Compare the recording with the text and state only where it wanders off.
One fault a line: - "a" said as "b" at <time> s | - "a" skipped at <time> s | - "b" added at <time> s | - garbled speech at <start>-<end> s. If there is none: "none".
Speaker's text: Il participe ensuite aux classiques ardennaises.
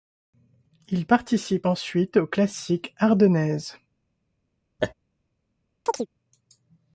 none